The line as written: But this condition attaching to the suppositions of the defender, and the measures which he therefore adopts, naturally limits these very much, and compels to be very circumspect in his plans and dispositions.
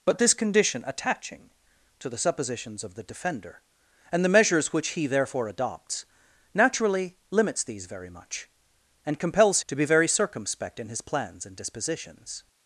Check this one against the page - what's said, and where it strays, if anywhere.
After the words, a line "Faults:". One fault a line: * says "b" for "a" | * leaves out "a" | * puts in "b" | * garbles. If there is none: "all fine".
But this condition attaching to the suppositions of the defender, and the measures which he therefore adopts, naturally limits these very much, and compels to be very circumspect in his plans and dispositions.
Faults:
all fine